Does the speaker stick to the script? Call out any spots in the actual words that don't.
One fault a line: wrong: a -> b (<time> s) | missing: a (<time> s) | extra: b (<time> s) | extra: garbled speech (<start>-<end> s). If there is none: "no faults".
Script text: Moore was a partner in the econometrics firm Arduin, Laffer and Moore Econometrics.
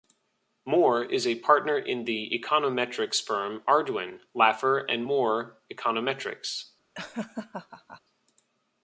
wrong: was -> is (1.0 s)